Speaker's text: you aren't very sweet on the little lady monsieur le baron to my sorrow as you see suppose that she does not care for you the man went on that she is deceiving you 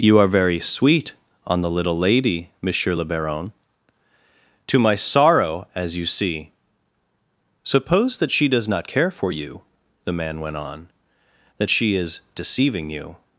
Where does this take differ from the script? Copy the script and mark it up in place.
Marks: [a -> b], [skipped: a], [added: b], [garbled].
you [aren't -> are] very sweet on the little lady monsieur le baron to my sorrow as you see suppose that she does not care for you the man went on that she is deceiving you